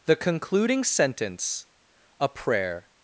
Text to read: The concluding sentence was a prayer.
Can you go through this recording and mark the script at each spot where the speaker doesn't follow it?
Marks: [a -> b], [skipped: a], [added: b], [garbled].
The concluding sentence [skipped: was] a prayer.